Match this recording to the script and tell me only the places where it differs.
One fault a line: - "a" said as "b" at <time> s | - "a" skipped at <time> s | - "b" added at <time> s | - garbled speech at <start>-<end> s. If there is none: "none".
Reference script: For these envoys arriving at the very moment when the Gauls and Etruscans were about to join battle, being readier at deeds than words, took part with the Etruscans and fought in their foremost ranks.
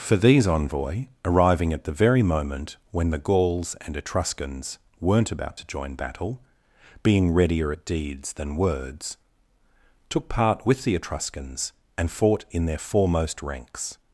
- "envoys" said as "envoy" at 0.5 s
- "were" said as "weren't" at 5.0 s